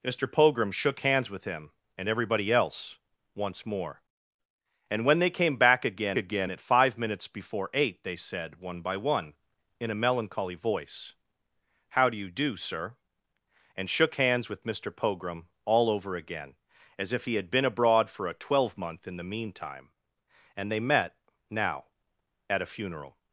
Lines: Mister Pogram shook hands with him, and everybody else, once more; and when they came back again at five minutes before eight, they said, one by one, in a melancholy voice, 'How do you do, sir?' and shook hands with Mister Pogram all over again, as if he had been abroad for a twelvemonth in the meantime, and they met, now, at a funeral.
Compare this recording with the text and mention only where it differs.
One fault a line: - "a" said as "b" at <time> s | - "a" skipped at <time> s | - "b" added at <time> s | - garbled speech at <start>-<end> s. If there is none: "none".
- "again" added at 6.2 s